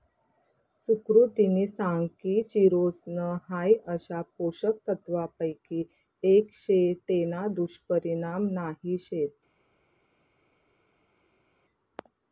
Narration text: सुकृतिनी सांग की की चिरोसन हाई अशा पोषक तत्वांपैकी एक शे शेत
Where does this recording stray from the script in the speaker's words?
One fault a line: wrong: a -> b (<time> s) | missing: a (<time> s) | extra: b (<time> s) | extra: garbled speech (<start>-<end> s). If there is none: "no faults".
missing: की (2.4 s)
extra: तेना दुष्परिणाम नाही (7.1 s)